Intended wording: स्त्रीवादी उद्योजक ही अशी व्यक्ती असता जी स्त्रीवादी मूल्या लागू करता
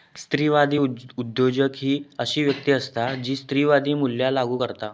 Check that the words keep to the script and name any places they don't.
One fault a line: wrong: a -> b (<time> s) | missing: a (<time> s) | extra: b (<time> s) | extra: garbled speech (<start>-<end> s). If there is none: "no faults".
no faults